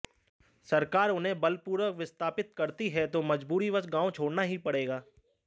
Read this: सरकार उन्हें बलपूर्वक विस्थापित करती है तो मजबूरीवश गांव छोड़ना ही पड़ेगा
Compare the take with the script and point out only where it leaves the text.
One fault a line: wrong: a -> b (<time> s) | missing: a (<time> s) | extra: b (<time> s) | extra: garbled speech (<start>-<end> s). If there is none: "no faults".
no faults